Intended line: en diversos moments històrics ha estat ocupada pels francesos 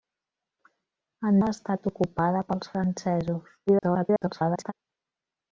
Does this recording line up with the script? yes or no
no